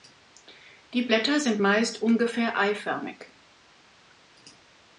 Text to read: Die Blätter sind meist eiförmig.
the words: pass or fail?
fail